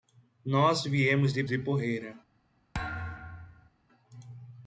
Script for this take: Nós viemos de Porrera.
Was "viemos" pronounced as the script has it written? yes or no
yes